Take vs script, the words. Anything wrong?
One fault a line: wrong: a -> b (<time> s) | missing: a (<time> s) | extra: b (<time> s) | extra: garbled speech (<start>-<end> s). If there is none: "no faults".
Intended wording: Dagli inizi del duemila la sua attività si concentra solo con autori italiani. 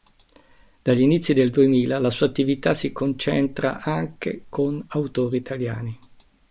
wrong: solo -> anche (3.8 s)